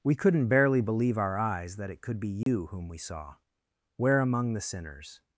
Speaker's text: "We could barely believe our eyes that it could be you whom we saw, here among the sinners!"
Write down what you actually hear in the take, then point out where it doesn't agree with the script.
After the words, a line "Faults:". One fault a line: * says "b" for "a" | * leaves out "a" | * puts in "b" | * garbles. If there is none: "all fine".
"We couldn't barely believe our eyes that it could be you whom we saw, where among the sinners!"
Faults:
* says "couldn't" for "could"
* says "where" for "here"